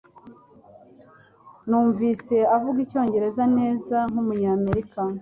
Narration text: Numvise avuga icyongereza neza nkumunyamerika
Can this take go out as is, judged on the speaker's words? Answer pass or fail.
pass